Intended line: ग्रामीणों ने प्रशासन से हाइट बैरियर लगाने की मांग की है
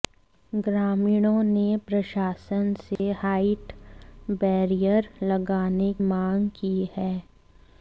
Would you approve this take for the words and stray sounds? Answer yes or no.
no